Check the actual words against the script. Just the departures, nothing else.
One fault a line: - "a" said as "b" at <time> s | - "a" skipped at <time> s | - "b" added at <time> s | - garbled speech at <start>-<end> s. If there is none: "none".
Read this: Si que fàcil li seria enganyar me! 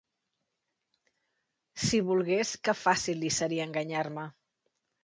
- "volgués" added at 2.1 s